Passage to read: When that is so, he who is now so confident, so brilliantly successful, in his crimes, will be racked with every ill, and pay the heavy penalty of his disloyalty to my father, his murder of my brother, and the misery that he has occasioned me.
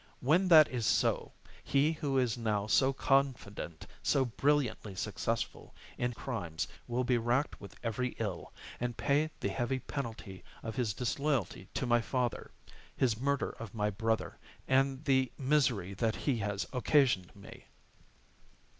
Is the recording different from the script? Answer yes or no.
yes